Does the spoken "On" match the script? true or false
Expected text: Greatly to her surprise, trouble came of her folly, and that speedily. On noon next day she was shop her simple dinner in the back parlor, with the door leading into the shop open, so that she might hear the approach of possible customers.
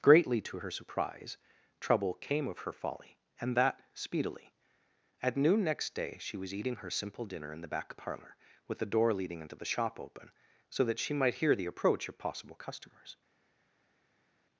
false